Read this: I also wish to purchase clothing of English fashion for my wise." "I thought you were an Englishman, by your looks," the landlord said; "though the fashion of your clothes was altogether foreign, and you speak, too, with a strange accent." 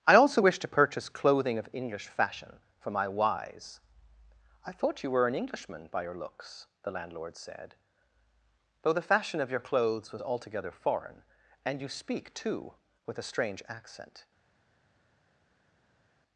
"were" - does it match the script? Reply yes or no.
yes